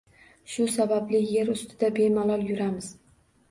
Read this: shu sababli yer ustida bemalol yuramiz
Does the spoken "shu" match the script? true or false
true